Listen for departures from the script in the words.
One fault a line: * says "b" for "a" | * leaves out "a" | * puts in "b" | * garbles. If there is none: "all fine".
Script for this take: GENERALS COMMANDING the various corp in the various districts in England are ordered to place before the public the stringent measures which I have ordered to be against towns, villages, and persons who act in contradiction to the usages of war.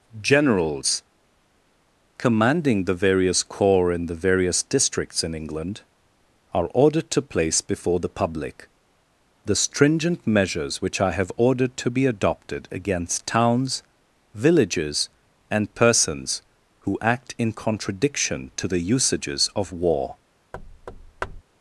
* says "corps" for "corp"
* puts in "adopted"